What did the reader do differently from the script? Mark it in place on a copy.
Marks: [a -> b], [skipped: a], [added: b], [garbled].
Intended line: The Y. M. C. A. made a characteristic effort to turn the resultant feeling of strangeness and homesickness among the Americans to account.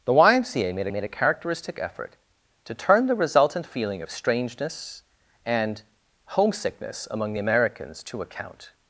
The Y. M. C. A. made [added: made] a characteristic effort to turn the resultant feeling of strangeness and homesickness among the Americans to account.